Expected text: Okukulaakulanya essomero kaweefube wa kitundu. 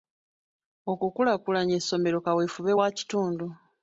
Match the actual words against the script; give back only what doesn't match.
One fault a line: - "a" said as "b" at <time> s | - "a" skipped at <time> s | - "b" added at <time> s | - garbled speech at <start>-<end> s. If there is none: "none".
none